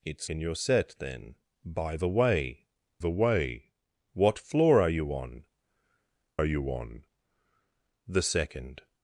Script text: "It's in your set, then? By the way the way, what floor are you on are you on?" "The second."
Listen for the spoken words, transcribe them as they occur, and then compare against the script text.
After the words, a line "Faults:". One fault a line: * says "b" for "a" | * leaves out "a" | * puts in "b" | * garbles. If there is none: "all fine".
"It's in your set, then? By the way the way, what floor are you on are you on?" "The second."
Faults:
all fine